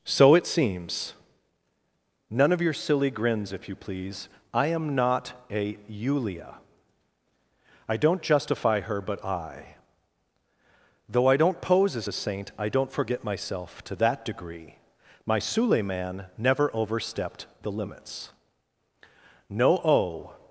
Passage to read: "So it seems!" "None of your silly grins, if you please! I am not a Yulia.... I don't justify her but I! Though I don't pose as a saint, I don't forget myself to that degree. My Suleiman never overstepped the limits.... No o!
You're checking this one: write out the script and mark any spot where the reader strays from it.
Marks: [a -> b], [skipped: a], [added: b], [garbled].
"So it seems!" "None of your silly grins, if you please! I am not a Yulia.... I don't justify her but I! Though I don't pose as a saint, I don't forget myself to that degree. My Suleiman never overstepped the limits.... No o!